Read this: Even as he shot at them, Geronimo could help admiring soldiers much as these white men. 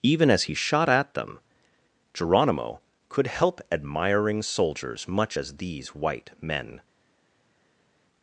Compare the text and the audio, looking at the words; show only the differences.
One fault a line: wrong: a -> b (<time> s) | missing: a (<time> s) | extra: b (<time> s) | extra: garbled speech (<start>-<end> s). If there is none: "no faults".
no faults